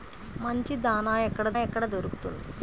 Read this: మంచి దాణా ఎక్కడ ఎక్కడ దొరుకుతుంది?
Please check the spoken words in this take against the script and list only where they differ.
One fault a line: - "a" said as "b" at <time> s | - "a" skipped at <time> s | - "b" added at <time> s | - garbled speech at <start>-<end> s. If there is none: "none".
none